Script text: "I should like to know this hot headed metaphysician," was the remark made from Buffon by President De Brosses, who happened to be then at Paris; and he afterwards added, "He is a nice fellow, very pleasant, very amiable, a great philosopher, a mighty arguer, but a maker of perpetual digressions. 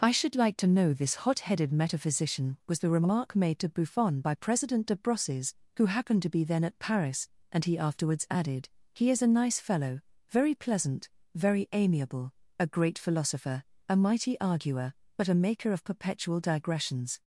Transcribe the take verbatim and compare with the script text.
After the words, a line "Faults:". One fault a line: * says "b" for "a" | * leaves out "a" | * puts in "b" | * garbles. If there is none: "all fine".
"I should like to know this hot headed metaphysician," was the remark made to Buffon by President De Brosses, who happened to be then at Paris; and he afterwards added, "He is a nice fellow, very pleasant, very amiable, a great philosopher, a mighty arguer, but a maker of perpetual digressions.
Faults:
* says "to" for "from"